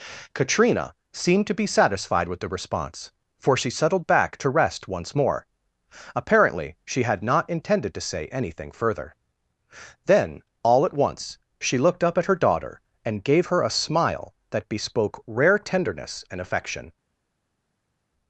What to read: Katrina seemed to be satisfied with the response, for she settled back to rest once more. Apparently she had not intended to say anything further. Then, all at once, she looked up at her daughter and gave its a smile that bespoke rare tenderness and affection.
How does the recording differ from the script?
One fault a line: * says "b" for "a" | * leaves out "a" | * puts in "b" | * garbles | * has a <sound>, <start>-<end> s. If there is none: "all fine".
* says "her" for "its"